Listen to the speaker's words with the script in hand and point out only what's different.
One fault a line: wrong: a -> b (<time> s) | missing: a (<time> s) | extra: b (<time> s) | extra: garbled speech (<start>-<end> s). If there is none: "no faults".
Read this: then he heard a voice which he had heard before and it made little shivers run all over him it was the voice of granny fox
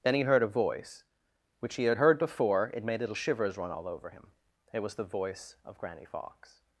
missing: and (2.7 s)